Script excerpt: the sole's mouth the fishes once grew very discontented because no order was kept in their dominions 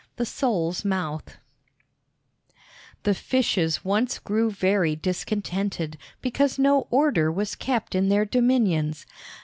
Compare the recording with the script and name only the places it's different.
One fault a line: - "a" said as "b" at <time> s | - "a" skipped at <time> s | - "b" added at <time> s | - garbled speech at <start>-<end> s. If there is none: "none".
none